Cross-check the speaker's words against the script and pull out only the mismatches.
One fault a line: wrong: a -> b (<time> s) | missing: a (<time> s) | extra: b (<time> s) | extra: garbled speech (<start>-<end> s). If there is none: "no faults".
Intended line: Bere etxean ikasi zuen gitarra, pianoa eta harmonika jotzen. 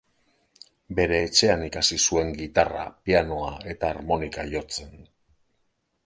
no faults